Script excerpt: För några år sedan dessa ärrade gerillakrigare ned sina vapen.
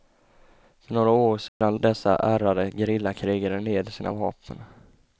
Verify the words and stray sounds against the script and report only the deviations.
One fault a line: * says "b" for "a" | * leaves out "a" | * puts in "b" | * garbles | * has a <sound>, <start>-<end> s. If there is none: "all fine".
* has a dropout, 1.5-1.6 s